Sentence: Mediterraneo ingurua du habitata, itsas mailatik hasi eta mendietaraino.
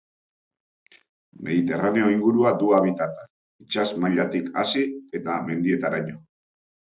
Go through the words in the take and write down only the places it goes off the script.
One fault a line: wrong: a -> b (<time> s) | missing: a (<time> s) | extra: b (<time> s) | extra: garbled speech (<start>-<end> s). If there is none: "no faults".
no faults